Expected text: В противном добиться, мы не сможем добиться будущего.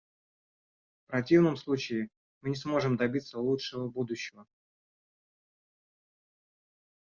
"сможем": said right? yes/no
yes